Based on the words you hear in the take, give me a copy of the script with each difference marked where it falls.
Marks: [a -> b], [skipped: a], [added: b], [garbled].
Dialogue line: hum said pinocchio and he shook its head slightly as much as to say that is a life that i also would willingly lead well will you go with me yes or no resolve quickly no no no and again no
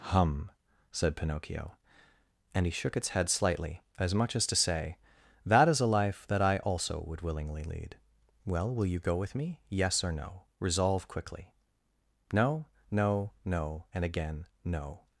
hum said pinocchio and he shook its head slightly as much as to say that is a life that i also would willingly lead well will you go with me yes or no resolve quickly no no no and again no